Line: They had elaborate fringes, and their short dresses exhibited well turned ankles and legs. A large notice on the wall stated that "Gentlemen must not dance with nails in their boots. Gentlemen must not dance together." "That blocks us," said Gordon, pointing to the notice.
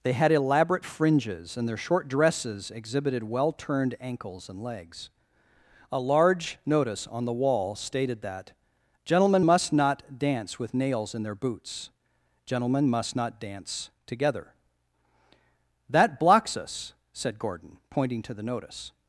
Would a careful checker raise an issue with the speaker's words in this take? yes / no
no